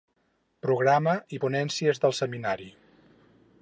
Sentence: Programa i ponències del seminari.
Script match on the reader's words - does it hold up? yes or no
yes